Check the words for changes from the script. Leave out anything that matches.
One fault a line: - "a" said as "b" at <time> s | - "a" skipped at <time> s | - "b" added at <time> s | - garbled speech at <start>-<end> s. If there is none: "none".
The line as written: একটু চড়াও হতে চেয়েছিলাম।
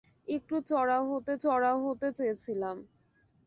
- "চড়াও হতে" added at 1.4 s